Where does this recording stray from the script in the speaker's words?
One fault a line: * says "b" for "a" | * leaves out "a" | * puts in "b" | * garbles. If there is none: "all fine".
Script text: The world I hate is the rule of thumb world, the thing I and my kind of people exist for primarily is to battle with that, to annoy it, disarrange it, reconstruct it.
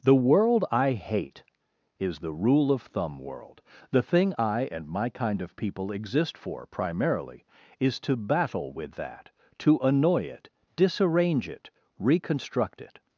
all fine